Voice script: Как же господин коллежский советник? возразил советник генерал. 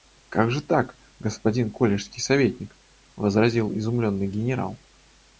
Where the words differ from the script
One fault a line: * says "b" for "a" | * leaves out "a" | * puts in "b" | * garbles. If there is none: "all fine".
* puts in "так"
* says "изумленный" for "советник"